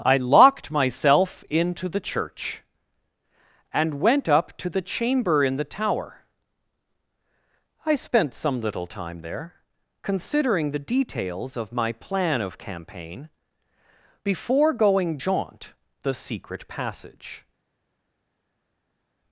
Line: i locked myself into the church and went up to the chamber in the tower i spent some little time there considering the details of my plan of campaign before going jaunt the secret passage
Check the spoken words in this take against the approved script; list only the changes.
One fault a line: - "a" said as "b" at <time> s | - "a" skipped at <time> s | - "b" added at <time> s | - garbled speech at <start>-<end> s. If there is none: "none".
none